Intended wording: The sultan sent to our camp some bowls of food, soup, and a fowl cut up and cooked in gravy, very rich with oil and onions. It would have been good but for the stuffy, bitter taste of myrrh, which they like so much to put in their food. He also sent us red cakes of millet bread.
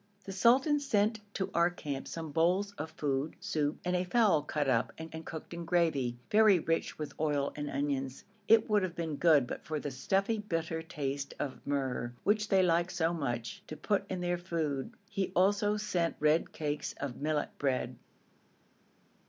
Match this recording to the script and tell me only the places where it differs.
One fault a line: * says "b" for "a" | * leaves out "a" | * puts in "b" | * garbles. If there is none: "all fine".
* puts in "and"
* leaves out "us"